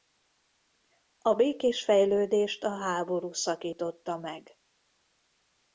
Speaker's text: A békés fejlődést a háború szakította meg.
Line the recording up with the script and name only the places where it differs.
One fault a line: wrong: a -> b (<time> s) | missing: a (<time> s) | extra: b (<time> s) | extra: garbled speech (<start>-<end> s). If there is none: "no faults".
no faults